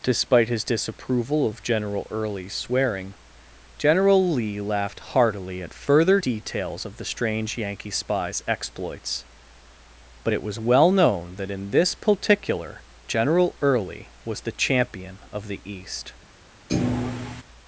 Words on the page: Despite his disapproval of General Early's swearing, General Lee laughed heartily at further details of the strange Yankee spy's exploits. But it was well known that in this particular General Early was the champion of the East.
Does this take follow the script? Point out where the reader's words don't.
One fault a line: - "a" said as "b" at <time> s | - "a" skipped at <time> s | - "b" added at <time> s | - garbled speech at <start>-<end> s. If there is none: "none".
none